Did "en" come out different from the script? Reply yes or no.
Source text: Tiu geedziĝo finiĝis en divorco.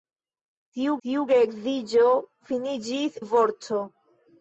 yes